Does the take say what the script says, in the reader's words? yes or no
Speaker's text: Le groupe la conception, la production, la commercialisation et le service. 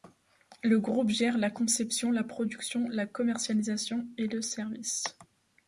no